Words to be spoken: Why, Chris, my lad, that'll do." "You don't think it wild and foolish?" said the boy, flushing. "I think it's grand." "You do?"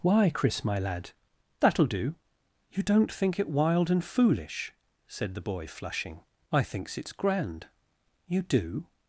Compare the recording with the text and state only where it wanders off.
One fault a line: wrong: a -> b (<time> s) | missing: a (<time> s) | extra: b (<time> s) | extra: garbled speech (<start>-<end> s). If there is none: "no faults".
wrong: think -> thinks (6.6 s)